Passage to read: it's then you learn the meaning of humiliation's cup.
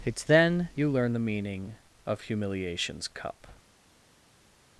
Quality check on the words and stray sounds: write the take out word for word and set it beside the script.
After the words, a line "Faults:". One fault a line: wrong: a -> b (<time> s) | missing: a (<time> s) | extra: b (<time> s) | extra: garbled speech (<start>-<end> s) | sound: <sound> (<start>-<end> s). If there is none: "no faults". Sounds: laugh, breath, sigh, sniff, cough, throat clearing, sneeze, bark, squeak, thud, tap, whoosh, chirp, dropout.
it's then you learn the meaning of humiliation's cup.
Faults:
no faults